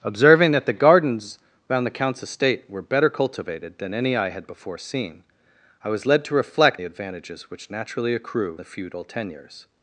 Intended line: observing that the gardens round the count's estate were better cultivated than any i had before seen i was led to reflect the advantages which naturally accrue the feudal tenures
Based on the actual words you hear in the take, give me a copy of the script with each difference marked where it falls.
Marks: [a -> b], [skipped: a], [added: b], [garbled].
observing that the gardens round the count's estate were better cultivated than any i had before seen i was led to reflect the advantages which naturally accrue the feudal tenures